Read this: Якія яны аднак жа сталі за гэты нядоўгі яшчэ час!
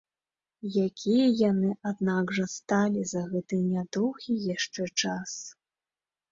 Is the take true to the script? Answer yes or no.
yes